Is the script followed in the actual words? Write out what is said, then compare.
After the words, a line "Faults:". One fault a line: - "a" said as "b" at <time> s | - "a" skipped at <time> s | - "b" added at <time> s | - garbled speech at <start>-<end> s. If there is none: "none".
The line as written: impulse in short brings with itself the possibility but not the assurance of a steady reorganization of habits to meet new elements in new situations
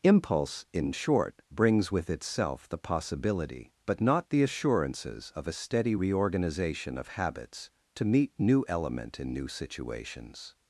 impulse in short brings with itself the possibility but not the assurances of a steady reorganization of habits to meet new element in new situations
Faults:
- "assurance" said as "assurances" at 4.4 s
- "elements" said as "element" at 8.7 s